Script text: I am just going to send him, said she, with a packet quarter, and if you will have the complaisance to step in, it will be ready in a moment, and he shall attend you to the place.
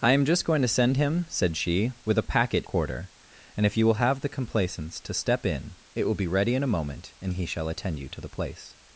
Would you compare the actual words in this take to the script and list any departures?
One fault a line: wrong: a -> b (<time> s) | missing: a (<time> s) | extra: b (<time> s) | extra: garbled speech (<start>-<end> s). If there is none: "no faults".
no faults